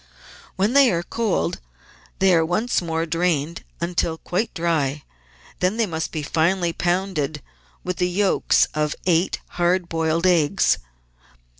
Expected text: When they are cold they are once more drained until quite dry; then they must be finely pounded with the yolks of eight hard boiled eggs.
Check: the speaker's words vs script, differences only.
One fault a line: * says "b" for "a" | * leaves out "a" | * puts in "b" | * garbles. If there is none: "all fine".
all fine